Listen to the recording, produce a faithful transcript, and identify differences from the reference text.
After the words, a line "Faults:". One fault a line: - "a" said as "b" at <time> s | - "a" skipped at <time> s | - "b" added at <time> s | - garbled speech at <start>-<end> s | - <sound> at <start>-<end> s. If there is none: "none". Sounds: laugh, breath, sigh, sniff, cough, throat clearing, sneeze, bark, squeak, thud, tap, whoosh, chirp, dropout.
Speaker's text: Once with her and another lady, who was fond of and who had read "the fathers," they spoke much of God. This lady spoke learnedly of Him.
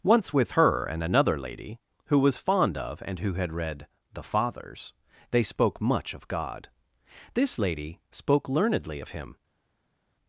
Once with her and another lady, who was fond of and who had read "the fathers," they spoke much of God. This lady spoke learnedly of Him.
Faults:
none